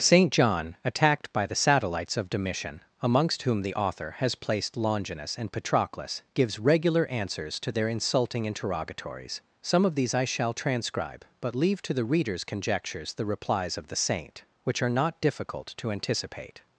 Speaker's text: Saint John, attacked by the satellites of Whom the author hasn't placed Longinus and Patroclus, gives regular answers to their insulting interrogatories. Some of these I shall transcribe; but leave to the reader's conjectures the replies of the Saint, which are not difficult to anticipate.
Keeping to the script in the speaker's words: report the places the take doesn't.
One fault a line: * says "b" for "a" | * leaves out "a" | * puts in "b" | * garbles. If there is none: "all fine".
* puts in "Domitian amongst"
* says "has" for "hasn't"